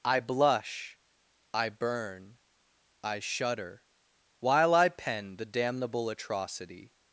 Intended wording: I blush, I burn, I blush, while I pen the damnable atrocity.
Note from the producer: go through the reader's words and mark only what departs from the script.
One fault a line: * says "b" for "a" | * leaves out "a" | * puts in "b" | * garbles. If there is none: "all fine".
* says "shudder" for "blush"